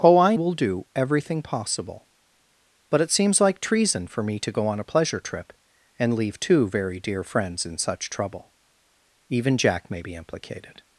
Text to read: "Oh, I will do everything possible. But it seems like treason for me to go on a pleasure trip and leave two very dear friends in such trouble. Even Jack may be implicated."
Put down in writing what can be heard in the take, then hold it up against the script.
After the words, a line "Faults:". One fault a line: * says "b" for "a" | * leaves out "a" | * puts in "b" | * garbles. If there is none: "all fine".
"Oh, I will do everything possible. But it seems like treason for me to go on a pleasure trip and leave two very dear friends in such trouble. Even Jack may be implicated."
Faults:
all fine